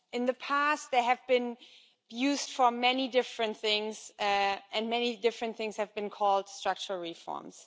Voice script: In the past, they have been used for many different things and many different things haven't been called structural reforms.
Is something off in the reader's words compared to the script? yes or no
yes